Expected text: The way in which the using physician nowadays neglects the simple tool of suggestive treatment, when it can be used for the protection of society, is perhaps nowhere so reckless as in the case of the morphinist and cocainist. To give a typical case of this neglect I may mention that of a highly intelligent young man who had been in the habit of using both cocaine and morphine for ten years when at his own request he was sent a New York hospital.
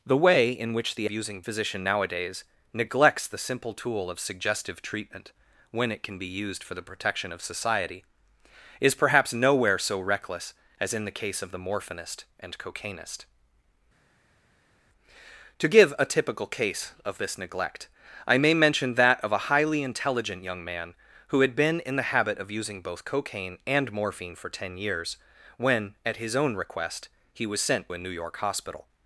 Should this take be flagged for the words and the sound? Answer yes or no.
no